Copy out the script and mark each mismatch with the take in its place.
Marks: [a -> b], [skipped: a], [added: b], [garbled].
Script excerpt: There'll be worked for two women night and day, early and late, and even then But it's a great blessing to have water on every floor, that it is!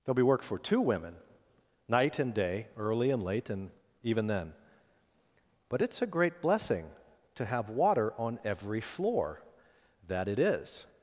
There'll be [worked -> work] for two women night and day, early and late, and even then But it's a great blessing to have water on every floor, that it is!